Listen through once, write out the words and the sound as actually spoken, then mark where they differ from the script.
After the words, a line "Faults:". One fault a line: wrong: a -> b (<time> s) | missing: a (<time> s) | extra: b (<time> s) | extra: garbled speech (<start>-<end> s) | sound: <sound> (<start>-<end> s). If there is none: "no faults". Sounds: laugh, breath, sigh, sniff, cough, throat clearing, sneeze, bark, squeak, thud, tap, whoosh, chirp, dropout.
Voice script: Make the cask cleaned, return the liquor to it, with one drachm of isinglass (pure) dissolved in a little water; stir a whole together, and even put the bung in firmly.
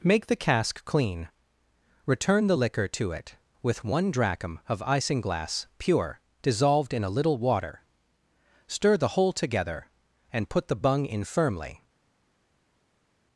Make the cask clean, return the liquor to it, with one drachm of isinglass (pure) dissolved in a little water; stir the whole together, and put the bung in firmly.
Faults:
wrong: cleaned -> clean (0.8 s)
wrong: a -> the (9.0 s)
missing: even (10.5 s)